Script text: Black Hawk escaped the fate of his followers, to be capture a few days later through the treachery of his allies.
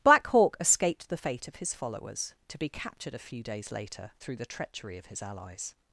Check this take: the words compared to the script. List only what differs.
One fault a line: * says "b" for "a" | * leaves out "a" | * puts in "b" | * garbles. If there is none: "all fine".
* says "captured" for "capture"